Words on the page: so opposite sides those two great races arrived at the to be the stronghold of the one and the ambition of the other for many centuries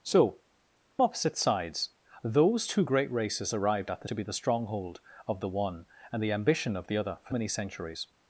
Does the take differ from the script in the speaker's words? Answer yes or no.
no